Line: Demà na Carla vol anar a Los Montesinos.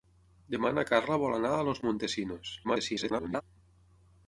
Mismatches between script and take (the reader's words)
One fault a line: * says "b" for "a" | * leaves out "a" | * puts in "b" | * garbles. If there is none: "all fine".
* garbles